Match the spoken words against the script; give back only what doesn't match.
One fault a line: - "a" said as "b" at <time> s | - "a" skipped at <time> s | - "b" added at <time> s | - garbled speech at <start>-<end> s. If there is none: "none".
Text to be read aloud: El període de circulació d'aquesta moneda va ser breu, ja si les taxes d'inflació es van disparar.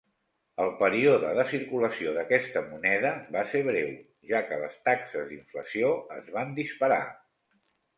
- "si" said as "que" at 4.5 s